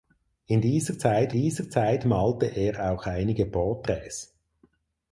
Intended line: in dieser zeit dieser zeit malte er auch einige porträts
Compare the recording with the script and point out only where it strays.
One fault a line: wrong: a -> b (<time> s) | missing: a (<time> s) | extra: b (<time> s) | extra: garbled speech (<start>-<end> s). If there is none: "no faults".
no faults